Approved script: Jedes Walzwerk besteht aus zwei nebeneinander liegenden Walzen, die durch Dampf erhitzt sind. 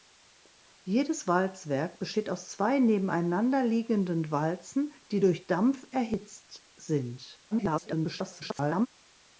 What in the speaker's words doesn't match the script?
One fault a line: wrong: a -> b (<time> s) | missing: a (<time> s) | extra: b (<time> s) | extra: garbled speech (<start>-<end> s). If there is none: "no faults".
extra: garbled speech (7.5-8.9 s)